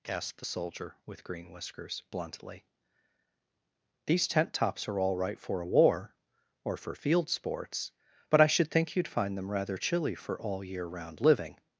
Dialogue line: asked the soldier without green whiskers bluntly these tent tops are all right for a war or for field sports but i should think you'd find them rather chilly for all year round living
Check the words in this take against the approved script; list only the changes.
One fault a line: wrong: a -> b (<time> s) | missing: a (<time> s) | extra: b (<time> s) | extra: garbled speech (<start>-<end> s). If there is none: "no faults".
wrong: without -> with (1.1 s)